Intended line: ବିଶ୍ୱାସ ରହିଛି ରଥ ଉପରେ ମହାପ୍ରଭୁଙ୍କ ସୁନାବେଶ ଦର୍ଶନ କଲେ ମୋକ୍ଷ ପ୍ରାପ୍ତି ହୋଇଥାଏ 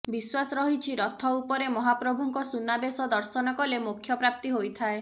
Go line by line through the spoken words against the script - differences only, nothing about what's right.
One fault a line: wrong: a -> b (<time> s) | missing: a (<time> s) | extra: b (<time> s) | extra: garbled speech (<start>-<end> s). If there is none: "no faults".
no faults